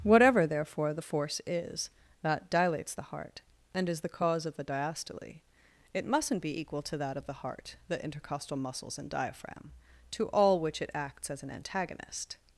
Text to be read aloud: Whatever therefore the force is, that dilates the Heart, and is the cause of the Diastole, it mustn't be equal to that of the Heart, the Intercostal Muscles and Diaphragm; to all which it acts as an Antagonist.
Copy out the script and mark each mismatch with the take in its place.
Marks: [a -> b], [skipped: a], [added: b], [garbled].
Whatever therefore the force is, that dilates the Heart, and is the cause of the Diastole, it mustn't be equal to that of the Heart, the Intercostal Muscles and Diaphragm; to all which it acts as an Antagonist.